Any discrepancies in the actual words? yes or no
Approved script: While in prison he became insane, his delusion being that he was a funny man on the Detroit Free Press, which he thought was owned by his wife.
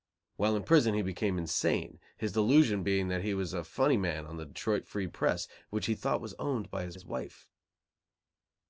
yes